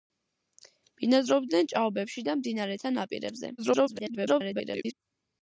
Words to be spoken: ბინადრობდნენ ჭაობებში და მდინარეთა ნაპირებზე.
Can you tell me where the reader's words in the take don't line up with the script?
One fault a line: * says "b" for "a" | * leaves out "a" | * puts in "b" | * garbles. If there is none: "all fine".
* garbles